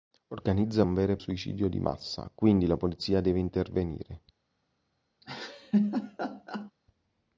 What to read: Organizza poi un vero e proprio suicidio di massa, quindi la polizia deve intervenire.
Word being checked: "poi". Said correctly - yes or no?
no